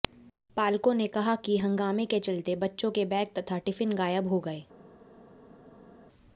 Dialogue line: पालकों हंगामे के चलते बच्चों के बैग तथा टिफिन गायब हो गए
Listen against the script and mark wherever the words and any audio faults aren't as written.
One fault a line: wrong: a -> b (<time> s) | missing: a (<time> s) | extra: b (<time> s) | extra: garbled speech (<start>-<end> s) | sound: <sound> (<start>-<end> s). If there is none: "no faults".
extra: ने कहा कि (0.9 s)